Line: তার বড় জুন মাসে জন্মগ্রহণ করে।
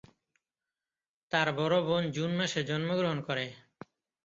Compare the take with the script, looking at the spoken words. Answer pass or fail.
fail